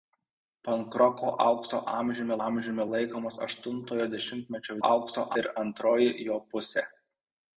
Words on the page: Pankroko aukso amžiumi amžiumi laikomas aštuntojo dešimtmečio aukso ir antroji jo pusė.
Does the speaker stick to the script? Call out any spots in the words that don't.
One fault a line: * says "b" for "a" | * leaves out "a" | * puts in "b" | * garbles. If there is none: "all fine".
all fine